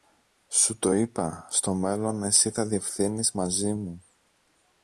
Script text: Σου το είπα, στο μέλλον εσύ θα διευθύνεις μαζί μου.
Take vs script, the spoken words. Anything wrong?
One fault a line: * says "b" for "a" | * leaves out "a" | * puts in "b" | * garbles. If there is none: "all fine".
all fine